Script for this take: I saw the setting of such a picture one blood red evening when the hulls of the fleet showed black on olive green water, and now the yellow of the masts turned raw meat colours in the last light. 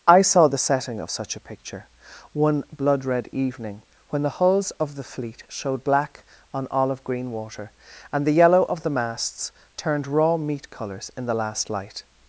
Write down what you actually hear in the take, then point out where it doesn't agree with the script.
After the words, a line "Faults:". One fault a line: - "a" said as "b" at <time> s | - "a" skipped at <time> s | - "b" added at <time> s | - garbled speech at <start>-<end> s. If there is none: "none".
I saw the setting of such a picture one blood red evening when the hulls of the fleet showed black on olive green water, and the yellow of the masts turned raw meat colours in the last light.
Faults:
- "now" skipped at 8.3 s